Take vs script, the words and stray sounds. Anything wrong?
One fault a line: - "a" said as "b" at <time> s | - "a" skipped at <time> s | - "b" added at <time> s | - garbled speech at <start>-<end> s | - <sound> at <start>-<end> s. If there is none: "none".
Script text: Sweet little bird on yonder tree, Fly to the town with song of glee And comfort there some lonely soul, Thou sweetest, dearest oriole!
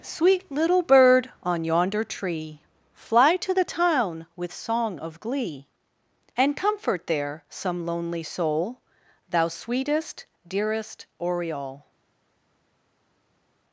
none